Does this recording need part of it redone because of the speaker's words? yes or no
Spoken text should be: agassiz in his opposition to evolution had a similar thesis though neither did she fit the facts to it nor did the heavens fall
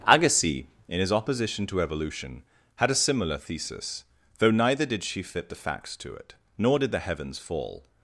no